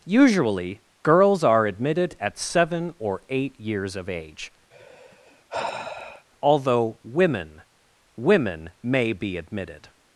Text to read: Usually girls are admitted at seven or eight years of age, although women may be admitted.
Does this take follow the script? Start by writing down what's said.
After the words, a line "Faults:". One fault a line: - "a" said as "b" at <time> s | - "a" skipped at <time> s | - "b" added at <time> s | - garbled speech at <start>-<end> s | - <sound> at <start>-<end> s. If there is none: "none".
Usually girls are admitted at seven or eight years of age, although women women may be admitted.
Faults:
- sigh at 4.7-6.3 s
- "women" added at 8.2 s